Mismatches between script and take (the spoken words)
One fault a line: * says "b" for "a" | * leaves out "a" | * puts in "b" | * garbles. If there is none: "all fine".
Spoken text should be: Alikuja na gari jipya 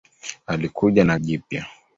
* leaves out "gari"